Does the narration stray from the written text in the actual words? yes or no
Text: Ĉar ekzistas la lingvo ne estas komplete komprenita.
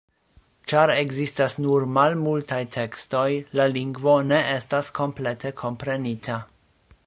yes